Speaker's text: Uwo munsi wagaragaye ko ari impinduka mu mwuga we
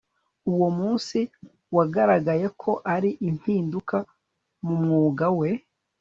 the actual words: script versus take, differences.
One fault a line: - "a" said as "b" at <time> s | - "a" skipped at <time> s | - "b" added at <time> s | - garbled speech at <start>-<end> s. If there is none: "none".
none